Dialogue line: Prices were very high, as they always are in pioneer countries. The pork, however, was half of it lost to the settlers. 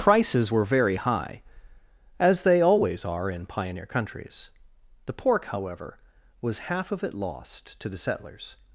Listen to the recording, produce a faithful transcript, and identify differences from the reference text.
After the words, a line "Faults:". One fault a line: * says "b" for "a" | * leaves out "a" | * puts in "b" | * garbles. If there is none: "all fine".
Prices were very high, as they always are in pioneer countries. The pork, however, was half of it lost to the settlers.
Faults:
all fine